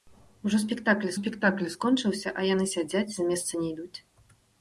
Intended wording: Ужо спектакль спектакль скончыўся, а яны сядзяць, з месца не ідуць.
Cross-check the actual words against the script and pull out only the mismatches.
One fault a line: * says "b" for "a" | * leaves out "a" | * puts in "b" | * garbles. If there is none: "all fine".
all fine